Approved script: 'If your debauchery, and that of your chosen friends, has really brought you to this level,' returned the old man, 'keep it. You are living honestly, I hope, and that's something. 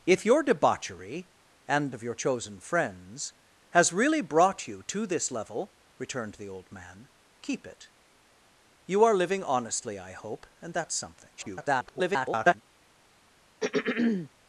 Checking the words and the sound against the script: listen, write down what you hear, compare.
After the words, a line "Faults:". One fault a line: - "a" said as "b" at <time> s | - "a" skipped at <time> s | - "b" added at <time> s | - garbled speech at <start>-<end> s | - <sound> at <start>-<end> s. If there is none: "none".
'If your debauchery, and of your chosen friends, has really brought you to this level,' returned the old man, 'keep it. You are living honestly, I hope, and that's something. [garbled]
Faults:
- "that" skipped at 1.9 s
- garbled speech at 11.4-12.6 s
- throat clearing at 13.6-14.3 s